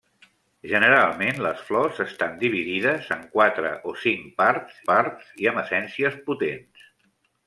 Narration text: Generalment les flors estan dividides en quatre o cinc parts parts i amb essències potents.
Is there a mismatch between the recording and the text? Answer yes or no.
no